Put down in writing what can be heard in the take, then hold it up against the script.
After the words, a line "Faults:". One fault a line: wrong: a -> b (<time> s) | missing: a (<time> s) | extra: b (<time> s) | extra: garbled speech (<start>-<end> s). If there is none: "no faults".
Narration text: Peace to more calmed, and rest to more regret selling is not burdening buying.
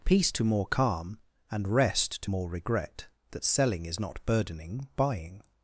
Peace to more calm, and rest to more regret that selling is not burdening buying.
Faults:
wrong: calmed -> calm (0.7 s)
extra: that (3.3 s)